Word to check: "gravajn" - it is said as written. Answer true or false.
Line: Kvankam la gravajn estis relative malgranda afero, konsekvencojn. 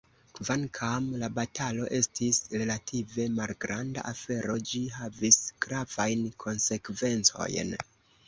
false